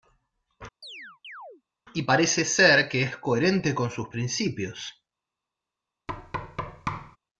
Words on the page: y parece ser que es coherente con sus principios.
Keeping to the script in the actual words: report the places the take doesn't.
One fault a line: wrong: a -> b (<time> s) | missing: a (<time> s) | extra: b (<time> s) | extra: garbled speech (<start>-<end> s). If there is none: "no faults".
no faults